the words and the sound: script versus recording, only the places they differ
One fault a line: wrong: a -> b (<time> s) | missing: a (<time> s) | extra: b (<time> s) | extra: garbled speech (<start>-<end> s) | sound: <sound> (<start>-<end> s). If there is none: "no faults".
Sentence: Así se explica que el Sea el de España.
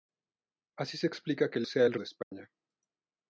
sound: dropout (2.2-2.3 s)